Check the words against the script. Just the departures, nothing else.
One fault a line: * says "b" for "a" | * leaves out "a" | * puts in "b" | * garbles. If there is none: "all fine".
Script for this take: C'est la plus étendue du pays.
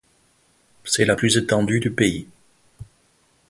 all fine